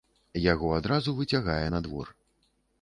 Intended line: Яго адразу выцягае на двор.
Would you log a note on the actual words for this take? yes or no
no